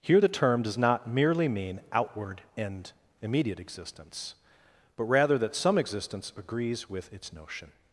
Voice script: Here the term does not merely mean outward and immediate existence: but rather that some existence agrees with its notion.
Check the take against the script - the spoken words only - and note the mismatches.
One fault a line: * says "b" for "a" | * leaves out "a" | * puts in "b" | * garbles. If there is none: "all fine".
all fine